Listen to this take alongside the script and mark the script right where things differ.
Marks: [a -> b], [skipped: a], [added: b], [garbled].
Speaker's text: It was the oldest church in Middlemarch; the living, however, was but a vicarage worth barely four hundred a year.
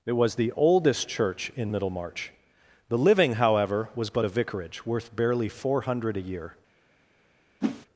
It was the oldest church in Middlemarch; the living, however, was but a vicarage worth barely four hundred a year.